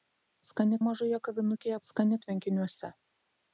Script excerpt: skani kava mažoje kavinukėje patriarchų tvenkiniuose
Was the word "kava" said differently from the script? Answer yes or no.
yes